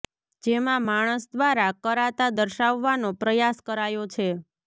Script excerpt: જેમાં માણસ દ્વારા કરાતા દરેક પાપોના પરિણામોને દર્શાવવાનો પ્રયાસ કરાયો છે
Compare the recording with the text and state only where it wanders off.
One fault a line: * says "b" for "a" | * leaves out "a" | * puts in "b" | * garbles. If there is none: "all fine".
* leaves out "દરેક પાપોના પરિણામોને"